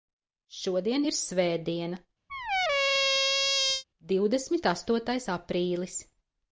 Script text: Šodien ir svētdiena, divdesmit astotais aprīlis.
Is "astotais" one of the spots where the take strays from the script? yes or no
no